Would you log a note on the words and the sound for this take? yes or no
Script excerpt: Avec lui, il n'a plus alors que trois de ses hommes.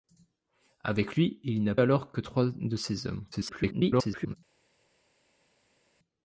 yes